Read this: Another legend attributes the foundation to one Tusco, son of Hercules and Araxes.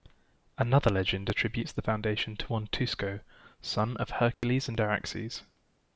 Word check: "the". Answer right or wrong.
right